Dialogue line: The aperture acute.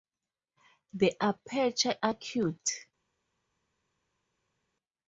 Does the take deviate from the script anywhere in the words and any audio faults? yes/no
no